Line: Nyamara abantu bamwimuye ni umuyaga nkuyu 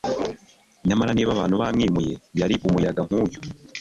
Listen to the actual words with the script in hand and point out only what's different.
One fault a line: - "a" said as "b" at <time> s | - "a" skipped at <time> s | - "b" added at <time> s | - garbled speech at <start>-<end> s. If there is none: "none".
- "niba" added at 1.1 s
- "ni" said as "yari" at 2.4 s